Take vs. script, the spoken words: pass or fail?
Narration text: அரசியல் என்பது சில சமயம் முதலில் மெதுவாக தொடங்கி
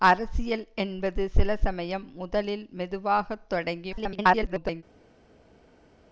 fail